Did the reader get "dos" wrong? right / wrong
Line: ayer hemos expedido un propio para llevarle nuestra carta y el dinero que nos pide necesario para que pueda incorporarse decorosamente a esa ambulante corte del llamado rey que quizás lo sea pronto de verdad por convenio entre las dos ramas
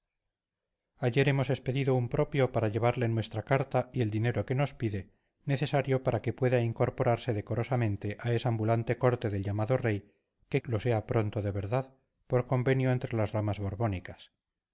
wrong